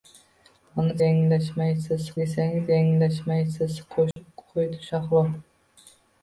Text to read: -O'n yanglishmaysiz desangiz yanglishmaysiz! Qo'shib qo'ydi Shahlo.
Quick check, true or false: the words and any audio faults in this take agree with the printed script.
false